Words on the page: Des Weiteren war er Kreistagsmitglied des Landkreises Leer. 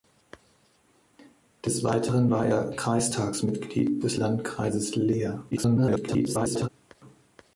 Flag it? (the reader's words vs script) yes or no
yes